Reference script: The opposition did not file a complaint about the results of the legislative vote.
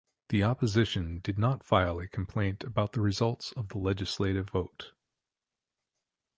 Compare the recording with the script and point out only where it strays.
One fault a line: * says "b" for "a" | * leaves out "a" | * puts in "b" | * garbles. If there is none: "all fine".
all fine